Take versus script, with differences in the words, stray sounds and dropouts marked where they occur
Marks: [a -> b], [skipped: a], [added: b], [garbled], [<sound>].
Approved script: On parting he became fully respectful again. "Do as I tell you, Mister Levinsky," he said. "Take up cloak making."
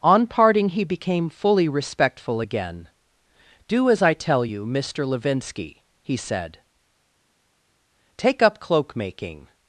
On parting he became fully respectful again. "Do as I tell you, Mister Levinsky," he said. "Take up cloak making."